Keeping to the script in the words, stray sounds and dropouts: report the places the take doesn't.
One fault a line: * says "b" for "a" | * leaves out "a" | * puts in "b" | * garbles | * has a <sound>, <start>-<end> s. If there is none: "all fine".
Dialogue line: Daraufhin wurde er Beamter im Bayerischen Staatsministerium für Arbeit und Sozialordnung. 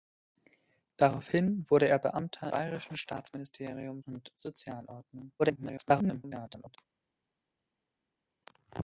* leaves out "im"
* leaves out "für Arbeit"
* garbles